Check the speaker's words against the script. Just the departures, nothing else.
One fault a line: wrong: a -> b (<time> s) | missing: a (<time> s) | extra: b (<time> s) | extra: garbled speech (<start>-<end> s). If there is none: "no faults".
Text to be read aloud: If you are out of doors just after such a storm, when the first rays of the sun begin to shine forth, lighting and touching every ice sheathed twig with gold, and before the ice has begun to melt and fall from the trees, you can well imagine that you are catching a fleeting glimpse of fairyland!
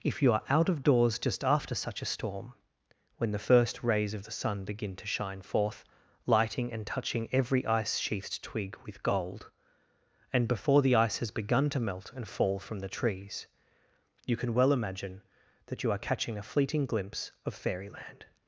no faults